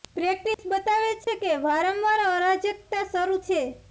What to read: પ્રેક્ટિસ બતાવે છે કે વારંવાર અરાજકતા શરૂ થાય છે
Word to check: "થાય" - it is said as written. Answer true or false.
false